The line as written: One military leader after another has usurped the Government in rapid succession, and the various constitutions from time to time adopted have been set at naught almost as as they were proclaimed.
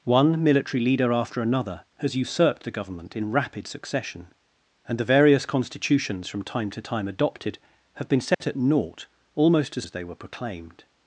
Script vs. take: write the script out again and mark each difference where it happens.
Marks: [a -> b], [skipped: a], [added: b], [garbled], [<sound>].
One military leader after another has usurped the Government in rapid succession, and the various constitutions from time to time adopted have been set [dropout] at naught almost as as they were proclaimed.